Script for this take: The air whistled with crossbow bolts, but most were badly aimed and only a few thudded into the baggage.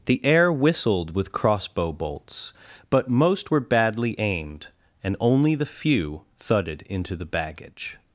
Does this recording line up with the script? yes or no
no